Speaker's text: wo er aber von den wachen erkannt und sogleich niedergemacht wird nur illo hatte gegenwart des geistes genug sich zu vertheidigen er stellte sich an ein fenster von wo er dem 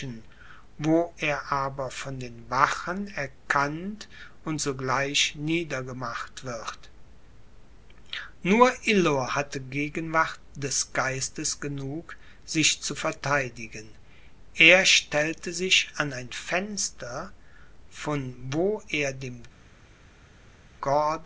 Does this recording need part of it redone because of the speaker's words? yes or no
no